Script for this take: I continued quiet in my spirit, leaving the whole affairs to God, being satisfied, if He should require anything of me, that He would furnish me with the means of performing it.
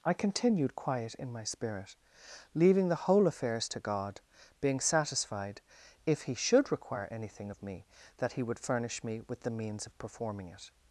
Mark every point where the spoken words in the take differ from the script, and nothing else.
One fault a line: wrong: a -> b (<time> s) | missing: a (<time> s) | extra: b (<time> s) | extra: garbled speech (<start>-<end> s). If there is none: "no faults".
no faults